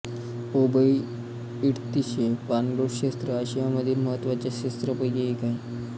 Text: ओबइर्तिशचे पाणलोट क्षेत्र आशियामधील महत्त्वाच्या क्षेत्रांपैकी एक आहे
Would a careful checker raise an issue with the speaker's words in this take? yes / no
no